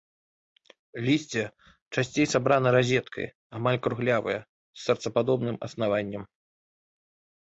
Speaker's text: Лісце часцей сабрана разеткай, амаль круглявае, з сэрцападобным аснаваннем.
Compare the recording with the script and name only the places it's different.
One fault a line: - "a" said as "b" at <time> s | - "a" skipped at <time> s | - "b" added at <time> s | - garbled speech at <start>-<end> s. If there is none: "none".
none